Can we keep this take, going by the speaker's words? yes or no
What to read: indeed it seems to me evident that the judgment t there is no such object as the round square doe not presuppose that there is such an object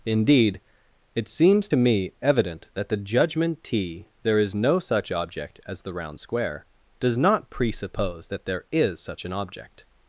no